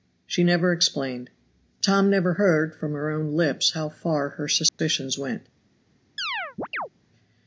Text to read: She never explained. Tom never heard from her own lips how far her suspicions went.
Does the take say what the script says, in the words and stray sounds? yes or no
no